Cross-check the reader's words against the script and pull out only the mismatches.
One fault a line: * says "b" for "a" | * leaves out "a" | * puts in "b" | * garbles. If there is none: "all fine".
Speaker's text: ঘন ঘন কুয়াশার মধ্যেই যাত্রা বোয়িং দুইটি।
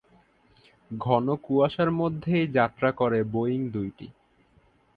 * leaves out "ঘন"
* puts in "করে"